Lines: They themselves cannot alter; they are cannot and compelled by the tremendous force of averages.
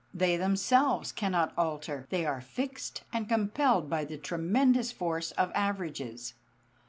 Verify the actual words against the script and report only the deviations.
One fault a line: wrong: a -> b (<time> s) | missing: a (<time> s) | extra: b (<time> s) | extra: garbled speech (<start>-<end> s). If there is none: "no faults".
wrong: cannot -> fixed (2.4 s)